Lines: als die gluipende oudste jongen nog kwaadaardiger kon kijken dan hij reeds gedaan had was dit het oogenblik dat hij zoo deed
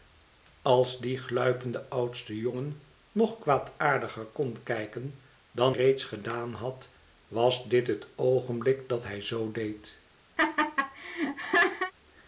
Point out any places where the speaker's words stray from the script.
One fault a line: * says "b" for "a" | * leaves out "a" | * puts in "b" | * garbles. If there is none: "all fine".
* leaves out "hij"